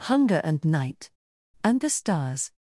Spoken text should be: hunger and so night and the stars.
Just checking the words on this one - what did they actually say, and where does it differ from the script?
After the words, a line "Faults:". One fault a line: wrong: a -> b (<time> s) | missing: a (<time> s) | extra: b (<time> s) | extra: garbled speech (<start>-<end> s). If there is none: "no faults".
hunger and night and the stars.
Faults:
missing: so (0.7 s)